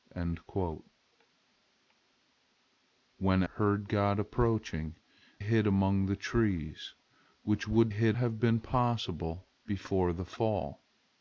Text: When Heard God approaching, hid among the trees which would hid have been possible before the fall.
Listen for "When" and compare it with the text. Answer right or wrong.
right